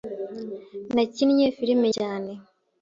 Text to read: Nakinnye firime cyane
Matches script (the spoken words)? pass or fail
pass